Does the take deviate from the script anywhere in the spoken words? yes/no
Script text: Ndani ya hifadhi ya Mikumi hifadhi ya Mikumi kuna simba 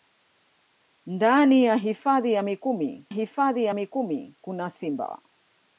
no